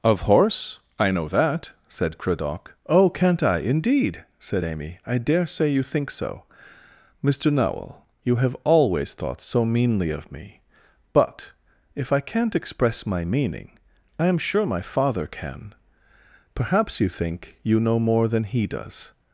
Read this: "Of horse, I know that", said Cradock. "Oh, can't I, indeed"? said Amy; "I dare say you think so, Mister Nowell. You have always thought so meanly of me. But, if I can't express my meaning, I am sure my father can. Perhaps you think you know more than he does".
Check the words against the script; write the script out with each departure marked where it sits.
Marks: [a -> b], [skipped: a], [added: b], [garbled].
"Of horse, I know that", said Cradock. "Oh, can't I, indeed"? said Amy; "I dare say you think so, Mister Nowell. You have always thought so meanly of me. But, if I can't express my meaning, I am sure my father can. Perhaps you think you know more than he does".